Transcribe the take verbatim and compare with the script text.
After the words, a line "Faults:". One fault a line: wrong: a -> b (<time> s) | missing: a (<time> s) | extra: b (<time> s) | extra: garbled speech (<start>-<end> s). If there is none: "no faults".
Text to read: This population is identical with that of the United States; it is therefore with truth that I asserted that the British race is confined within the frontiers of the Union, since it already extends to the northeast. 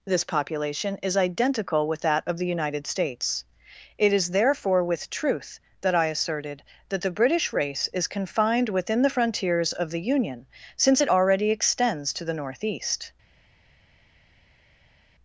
This population is identical with that of the United States; it is therefore with truth that I asserted that the British race is confined within the frontiers of the Union, since it already extends to the northeast.
Faults:
no faults